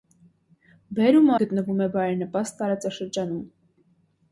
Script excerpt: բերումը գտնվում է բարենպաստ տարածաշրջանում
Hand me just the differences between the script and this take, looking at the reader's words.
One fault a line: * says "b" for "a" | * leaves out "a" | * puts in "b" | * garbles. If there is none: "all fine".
all fine